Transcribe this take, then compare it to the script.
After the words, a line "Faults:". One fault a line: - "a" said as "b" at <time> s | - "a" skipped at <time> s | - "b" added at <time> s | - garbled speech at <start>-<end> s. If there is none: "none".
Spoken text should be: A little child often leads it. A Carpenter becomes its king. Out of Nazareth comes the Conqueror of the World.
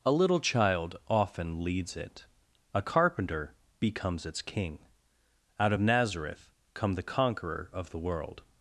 A little child often leads it. A Carpenter becomes its king. Out of Nazareth come the Conqueror of the World.
Faults:
- "comes" said as "come" at 6.7 s